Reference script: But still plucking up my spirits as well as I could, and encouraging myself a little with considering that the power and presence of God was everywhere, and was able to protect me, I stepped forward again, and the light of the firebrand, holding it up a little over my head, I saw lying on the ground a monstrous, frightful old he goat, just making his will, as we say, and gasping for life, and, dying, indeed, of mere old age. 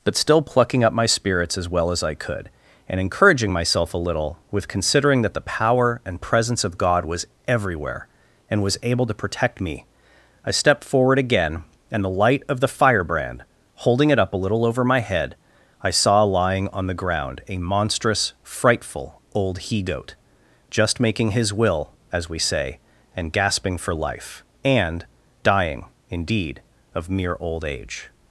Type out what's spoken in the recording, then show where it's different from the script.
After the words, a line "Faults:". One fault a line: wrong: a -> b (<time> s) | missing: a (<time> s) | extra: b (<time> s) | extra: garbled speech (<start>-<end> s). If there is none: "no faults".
But still plucking up my spirits as well as I could, and encouraging myself a little with considering that the power and presence of God was everywhere, and was able to protect me, I stepped forward again, and the light of the firebrand, holding it up a little over my head, I saw lying on the ground a monstrous, frightful old he goat, just making his will, as we say, and gasping for life, and, dying, indeed, of mere old age.
Faults:
no faults